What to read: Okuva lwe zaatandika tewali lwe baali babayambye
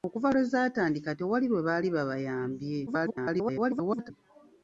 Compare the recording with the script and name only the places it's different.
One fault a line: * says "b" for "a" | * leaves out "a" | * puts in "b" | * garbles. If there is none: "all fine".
* garbles